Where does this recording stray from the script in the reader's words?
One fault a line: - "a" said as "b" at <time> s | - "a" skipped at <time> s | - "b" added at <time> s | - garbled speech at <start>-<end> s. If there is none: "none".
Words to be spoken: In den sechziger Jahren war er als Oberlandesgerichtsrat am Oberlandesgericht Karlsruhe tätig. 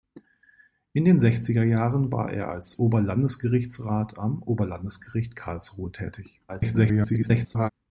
- garbled speech at 6.5-7.7 s